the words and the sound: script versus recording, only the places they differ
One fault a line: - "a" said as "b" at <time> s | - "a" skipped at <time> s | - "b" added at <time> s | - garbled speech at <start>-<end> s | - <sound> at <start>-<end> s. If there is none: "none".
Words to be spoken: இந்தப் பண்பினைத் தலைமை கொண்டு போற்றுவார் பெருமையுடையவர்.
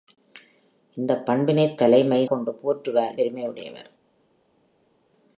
none